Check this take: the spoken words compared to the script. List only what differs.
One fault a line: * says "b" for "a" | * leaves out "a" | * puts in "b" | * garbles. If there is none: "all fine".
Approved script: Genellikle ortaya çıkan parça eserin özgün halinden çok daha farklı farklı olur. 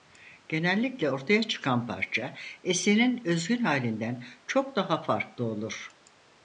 * leaves out "farklı"